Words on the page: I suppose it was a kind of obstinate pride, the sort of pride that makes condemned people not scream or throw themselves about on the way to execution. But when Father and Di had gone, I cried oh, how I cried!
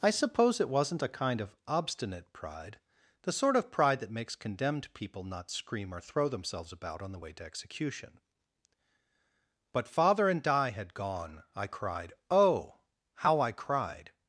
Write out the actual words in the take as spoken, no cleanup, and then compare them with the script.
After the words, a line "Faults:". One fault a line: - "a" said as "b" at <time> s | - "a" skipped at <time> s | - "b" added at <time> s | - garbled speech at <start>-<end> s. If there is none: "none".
I suppose it wasn't a kind of obstinate pride, the sort of pride that makes condemned people not scream or throw themselves about on the way to execution. But Father and Di had gone, I cried oh, how I cried!
Faults:
- "was" said as "wasn't" at 0.7 s
- "when" skipped at 9.9 s